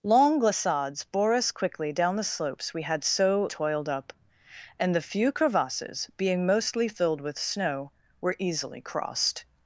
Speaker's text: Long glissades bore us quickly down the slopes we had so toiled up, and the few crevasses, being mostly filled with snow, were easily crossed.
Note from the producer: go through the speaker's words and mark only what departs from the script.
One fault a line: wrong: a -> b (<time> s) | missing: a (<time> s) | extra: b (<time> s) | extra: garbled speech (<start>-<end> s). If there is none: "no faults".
no faults